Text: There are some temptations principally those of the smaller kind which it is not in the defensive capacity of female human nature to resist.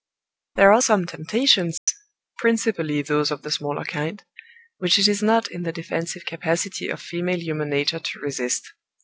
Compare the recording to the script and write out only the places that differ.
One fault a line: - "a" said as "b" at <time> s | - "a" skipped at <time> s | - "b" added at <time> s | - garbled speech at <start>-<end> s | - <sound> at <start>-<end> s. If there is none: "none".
- dropout at 1.8-1.9 s